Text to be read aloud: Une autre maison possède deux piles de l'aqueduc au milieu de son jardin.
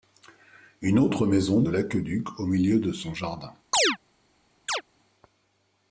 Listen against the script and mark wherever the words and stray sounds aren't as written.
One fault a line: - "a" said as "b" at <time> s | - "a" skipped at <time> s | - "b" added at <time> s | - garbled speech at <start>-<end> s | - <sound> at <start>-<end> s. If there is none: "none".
- "possède deux piles" skipped at 1.6 s
- chirp at 3.7-4.0 s
- chirp at 4.7-4.8 s